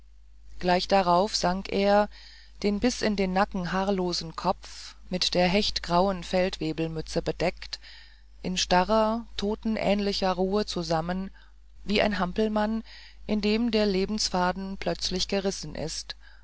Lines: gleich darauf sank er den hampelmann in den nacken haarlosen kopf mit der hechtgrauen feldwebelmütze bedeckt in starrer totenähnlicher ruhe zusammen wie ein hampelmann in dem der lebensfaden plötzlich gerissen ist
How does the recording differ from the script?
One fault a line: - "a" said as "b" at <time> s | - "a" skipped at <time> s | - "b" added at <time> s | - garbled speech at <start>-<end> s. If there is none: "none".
- "hampelmann" said as "bis" at 2.8 s